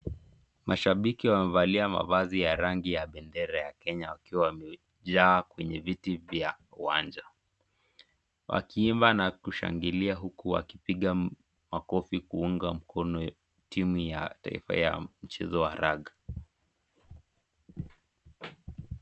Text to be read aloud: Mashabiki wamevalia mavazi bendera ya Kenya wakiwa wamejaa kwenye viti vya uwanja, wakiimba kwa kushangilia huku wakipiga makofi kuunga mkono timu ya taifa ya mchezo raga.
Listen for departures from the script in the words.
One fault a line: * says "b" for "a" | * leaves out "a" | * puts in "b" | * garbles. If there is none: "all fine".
* puts in "ya rangi ya"
* says "na" for "kwa"
* puts in "wa"